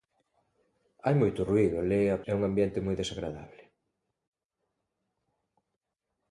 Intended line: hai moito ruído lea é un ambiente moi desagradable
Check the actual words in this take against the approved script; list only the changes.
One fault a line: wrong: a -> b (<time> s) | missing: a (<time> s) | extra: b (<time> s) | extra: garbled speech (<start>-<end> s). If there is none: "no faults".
no faults